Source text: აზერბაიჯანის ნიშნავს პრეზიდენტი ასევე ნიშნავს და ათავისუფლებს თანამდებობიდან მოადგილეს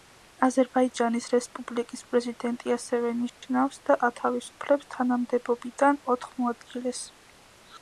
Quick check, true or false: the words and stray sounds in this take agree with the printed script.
false